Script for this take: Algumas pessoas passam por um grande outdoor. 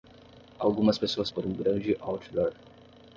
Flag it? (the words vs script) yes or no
yes